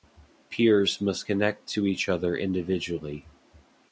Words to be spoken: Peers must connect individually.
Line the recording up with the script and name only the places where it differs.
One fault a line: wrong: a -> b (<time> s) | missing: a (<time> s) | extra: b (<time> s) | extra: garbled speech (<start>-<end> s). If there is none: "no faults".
extra: to each other (1.7 s)